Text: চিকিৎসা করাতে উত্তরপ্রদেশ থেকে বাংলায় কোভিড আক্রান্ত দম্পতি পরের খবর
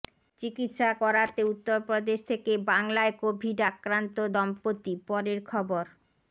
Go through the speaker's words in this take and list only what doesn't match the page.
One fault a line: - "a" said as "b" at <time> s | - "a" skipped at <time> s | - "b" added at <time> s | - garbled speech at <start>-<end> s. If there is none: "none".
none